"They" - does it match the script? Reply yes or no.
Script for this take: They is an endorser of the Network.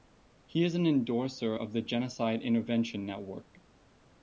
no